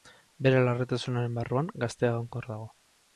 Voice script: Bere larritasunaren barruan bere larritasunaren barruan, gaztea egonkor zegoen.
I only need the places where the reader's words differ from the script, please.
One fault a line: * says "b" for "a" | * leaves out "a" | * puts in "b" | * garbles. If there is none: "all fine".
* leaves out "bere larritasunaren barruan"
* says "dago" for "zegoen"